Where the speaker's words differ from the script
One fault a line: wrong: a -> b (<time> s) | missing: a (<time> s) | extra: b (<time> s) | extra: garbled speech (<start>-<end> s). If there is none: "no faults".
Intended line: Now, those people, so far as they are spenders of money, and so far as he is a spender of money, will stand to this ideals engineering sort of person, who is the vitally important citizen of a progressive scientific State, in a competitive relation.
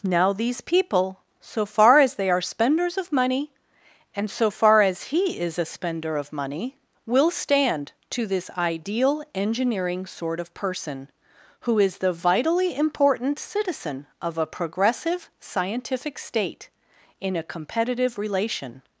wrong: those -> these (0.3 s)
wrong: ideals -> ideal (8.6 s)